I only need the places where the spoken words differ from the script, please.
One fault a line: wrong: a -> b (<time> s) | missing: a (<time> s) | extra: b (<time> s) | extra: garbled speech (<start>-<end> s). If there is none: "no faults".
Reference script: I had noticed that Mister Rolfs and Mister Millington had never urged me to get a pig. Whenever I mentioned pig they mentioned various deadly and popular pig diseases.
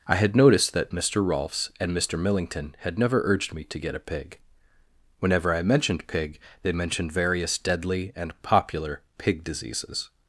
no faults